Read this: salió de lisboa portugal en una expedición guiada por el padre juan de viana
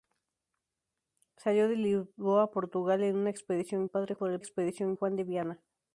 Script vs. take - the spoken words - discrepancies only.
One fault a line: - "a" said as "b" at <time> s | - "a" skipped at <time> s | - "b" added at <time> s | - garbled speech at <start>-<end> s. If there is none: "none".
- "guiada" said as "padre" at 3.8 s
- "padre" said as "expedición" at 4.4 s